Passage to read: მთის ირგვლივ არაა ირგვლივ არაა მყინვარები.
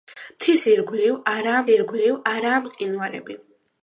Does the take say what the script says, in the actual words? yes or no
yes